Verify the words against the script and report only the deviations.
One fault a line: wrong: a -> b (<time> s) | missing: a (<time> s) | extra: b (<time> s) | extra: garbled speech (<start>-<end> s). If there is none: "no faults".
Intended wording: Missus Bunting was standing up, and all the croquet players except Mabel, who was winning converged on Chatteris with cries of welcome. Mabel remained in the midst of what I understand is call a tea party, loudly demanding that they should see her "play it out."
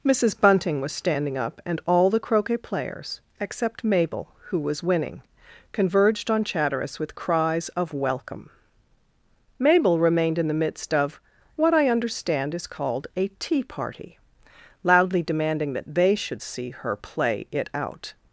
wrong: call -> called (12.7 s)